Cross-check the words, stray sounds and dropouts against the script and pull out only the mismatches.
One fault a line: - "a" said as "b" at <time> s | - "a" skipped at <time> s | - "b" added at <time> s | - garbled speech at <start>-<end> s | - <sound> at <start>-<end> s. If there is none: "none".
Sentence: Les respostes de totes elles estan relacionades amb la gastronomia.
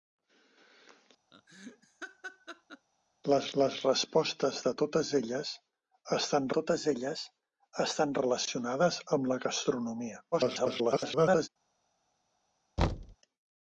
- laugh at 1.3-2.9 s
- "les" added at 3.6 s
- "totes elles estan" added at 6.6 s
- garbled speech at 10.3-11.5 s
- thud at 12.8-13.2 s